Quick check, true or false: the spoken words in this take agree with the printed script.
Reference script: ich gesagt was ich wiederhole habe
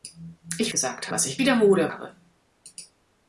true